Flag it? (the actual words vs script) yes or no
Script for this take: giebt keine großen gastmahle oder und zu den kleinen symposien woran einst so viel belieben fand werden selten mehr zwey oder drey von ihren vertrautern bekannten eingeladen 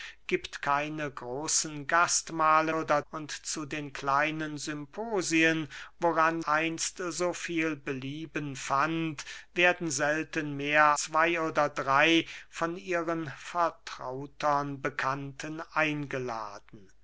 no